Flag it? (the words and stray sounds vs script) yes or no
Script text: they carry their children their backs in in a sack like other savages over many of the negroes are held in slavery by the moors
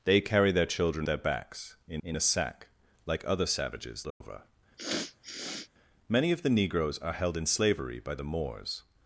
yes